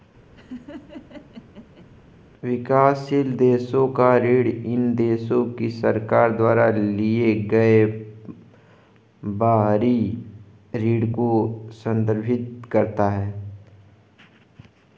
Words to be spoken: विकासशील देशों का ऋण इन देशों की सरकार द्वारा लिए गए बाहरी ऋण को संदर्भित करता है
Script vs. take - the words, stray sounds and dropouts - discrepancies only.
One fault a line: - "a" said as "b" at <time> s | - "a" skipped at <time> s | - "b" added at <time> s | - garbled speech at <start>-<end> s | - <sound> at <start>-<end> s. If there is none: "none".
- laugh at 0.4-1.9 s